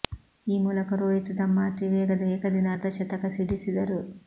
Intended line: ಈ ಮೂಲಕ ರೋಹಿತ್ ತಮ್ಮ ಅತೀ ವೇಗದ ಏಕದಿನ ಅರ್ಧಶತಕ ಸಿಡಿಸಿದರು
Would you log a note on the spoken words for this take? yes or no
no